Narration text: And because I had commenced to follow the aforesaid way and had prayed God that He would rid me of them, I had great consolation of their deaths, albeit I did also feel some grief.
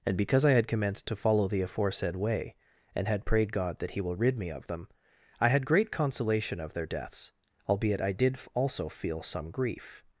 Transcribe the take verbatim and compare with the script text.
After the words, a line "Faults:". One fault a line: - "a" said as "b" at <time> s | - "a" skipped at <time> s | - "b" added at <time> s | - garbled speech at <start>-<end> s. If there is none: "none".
And because I had commenced to follow the aforesaid way and had prayed God that He will rid me of them, I had great consolation of their deaths, albeit I did also feel some grief.
Faults:
- "would" said as "will" at 4.0 s